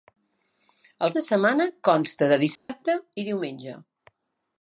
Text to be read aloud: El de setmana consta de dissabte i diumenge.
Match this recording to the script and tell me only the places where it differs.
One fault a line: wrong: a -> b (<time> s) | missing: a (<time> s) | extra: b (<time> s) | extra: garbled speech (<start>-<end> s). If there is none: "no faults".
no faults